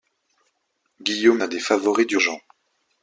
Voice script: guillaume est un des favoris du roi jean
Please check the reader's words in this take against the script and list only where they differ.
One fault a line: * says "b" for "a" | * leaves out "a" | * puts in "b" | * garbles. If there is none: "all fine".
* leaves out "est"
* leaves out "roi"